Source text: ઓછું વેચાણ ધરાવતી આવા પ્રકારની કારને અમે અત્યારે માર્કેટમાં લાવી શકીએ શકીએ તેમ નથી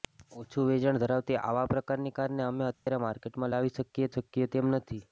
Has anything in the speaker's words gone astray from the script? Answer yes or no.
no